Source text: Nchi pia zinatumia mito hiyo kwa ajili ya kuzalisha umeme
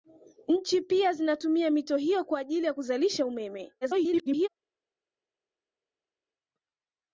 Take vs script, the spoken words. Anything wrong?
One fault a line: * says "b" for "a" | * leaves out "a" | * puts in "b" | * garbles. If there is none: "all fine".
* garbles